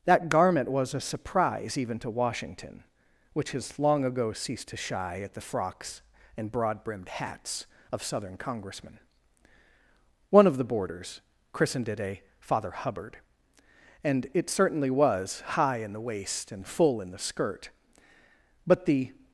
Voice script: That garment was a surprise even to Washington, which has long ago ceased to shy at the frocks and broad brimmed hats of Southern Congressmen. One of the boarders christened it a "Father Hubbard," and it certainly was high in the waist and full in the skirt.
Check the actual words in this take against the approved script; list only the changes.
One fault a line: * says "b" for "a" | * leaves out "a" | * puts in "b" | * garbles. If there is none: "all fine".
* puts in "But the"